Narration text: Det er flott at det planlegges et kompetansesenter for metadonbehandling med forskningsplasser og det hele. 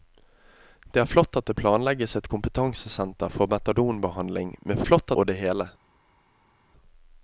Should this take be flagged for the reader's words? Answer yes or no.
yes